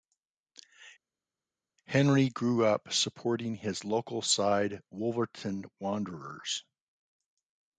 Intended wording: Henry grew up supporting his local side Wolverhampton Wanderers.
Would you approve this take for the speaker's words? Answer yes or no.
yes